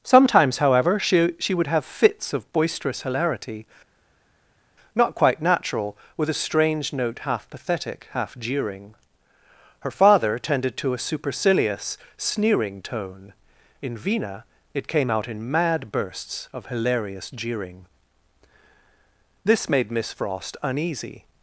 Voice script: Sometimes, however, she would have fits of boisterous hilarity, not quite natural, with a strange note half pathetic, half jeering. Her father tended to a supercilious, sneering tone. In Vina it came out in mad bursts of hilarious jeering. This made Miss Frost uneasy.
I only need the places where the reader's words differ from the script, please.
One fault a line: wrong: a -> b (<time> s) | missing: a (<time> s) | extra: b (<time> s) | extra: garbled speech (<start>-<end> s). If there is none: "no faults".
extra: she (1.4 s)